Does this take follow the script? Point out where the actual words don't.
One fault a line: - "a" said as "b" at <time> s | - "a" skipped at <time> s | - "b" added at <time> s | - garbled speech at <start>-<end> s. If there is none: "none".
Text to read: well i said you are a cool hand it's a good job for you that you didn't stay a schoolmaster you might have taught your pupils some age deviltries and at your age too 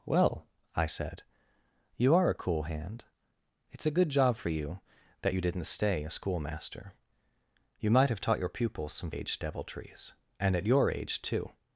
none